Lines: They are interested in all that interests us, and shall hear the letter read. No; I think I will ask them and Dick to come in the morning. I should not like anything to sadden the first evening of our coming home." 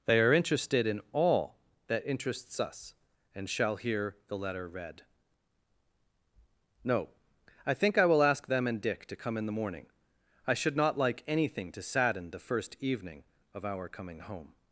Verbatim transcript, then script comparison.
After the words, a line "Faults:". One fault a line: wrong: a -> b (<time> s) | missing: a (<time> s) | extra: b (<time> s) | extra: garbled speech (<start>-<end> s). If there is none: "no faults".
They are interested in all that interests us, and shall hear the letter read. No; I think I will ask them and Dick to come in the morning. I should not like anything to sadden the first evening of our coming home."
Faults:
no faults